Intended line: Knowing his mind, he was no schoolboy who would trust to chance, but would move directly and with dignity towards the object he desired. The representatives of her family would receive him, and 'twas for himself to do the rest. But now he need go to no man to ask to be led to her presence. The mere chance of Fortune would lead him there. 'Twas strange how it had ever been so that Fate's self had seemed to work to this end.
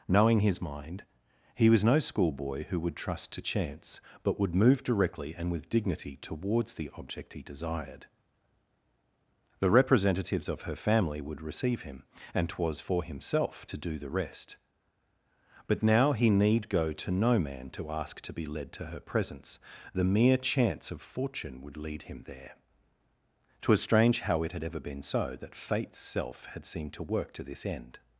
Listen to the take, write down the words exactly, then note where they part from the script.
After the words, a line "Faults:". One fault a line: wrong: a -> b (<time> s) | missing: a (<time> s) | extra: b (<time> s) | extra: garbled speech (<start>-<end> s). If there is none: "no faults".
Knowing his mind, he was no schoolboy who would trust to chance, but would move directly and with dignity towards the object he desired. The representatives of her family would receive him, and 'twas for himself to do the rest. But now he need go to no man to ask to be led to her presence. The mere chance of Fortune would lead him there. 'Twas strange how it had ever been so that Fate's self had seemed to work to this end.
Faults:
no faults